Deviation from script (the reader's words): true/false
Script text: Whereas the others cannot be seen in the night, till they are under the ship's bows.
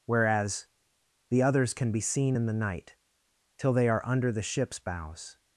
true